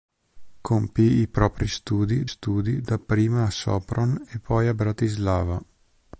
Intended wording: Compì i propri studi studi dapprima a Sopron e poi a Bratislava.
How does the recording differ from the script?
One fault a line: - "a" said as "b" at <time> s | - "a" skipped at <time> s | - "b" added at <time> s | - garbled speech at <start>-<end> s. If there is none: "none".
none